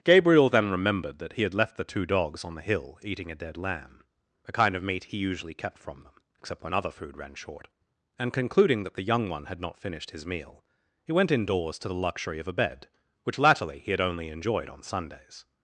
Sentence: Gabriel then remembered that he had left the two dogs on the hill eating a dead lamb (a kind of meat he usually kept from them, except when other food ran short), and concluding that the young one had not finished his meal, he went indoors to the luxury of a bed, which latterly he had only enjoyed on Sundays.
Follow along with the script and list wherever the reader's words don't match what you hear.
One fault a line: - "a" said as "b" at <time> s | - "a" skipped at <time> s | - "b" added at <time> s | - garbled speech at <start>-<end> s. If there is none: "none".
none